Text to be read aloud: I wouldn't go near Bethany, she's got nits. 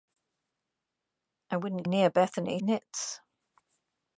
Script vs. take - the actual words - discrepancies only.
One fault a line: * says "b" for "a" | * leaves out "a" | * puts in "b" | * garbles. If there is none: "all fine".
* leaves out "go"
* leaves out "she's got"